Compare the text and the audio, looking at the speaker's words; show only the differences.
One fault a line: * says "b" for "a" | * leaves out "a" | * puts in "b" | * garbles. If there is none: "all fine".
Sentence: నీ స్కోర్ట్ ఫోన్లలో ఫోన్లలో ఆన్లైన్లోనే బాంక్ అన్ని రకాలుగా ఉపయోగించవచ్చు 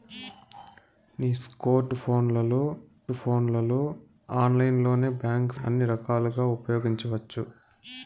all fine